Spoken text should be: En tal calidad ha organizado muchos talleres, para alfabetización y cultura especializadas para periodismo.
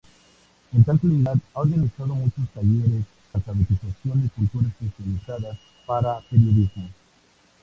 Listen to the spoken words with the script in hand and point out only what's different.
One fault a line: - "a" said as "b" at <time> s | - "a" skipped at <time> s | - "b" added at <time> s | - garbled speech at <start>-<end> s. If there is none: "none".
- "para" skipped at 3.0 s